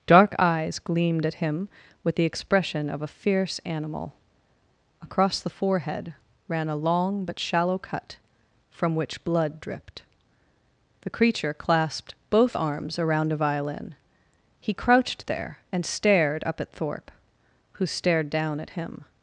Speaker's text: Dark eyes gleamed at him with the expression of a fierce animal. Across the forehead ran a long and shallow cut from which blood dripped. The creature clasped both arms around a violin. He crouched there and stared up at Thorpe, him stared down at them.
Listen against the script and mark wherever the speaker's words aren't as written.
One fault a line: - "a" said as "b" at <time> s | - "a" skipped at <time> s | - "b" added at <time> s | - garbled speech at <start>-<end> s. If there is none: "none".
- "and" said as "but" at 7.2 s
- "him" said as "who" at 17.7 s
- "them" said as "him" at 18.7 s